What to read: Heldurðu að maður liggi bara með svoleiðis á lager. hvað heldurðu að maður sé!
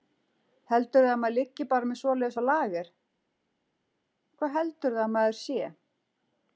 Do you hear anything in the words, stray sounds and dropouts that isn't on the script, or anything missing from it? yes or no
no